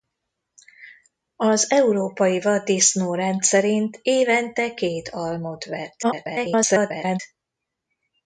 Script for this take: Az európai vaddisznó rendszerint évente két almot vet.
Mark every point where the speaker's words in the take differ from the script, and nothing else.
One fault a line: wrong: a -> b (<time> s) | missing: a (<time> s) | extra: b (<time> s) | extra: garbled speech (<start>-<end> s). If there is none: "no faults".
extra: garbled speech (6.0-7.2 s)